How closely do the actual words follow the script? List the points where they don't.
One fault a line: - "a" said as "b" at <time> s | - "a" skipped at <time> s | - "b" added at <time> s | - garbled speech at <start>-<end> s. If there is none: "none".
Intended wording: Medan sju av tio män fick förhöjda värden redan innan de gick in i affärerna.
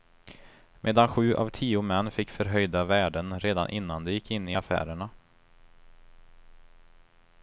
none